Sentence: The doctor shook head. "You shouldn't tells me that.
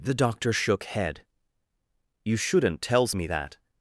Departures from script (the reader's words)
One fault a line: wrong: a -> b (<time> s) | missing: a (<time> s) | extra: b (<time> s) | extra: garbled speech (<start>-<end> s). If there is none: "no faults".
no faults